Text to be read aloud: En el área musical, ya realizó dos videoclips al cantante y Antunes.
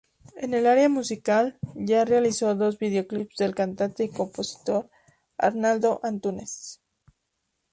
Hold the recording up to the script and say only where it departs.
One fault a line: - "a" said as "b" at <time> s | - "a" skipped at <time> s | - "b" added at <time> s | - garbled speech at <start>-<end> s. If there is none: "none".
- "al" said as "del" at 3.4 s
- "compositor Arnaldo" added at 4.1 s